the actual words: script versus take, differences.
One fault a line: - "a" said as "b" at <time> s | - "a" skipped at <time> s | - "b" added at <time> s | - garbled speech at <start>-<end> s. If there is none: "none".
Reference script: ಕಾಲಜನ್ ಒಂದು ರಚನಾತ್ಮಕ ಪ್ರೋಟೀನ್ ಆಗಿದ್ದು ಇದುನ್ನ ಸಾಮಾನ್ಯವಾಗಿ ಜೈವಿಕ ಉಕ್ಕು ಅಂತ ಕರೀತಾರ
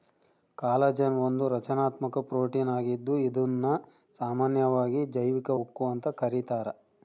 none